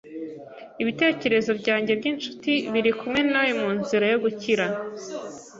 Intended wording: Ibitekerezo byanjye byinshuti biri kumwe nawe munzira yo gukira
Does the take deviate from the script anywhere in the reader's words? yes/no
no